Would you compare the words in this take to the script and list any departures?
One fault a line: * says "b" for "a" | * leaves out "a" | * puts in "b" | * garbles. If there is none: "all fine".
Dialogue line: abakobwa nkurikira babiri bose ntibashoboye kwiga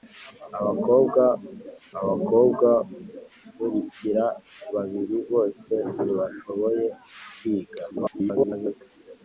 * puts in "abakobwa"
* garbles